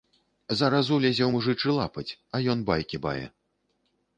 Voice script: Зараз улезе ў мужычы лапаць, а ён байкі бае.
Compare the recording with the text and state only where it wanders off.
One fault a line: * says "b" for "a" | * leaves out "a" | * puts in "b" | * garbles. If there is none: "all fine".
all fine